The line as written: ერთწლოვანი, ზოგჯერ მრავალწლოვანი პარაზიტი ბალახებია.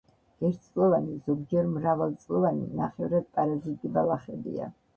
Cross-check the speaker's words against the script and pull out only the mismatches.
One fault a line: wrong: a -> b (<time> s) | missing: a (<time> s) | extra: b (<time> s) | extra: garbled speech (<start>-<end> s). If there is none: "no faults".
extra: ნახევრად (2.8 s)